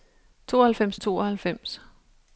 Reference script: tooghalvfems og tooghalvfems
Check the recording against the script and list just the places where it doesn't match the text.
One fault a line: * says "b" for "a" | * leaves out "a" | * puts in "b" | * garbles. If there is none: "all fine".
all fine